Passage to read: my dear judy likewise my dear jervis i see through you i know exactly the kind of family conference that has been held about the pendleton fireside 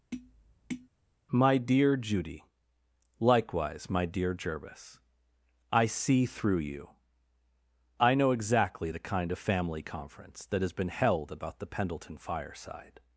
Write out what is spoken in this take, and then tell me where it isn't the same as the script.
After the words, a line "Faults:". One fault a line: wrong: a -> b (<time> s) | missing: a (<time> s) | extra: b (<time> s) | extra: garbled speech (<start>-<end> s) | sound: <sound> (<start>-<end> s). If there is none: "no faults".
my dear judy likewise my dear jervis i see through you i know exactly the kind of family conference that has been held about the pendleton fireside
Faults:
sound: tap (0.1-0.9 s)